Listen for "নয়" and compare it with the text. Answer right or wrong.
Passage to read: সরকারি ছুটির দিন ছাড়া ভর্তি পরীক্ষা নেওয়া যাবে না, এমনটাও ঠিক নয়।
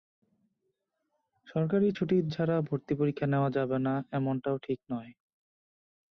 right